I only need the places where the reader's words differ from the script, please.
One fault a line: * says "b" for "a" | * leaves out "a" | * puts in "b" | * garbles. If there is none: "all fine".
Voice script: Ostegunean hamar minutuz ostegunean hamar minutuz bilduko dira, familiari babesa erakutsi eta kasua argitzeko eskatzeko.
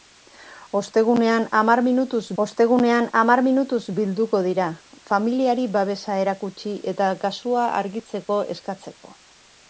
all fine